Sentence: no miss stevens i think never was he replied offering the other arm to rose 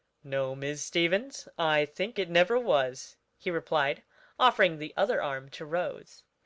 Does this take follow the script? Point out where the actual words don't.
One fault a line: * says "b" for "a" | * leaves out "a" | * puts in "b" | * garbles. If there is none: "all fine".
* puts in "it"